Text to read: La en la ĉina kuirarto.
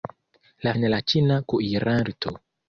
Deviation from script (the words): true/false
false